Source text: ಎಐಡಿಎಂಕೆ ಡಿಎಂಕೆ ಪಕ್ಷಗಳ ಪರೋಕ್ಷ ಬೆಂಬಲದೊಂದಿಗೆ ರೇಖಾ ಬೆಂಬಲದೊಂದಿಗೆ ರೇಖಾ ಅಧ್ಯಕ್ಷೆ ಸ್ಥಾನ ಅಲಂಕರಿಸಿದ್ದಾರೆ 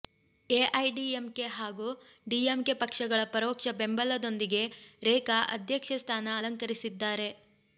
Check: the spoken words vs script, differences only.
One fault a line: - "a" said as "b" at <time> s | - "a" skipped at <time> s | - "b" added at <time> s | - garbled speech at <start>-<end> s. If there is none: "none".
- "ಹಾಗೂ" added at 1.6 s
- "ಬೆಂಬಲದೊಂದಿಗೆ ರೇಖಾ" skipped at 5.4 s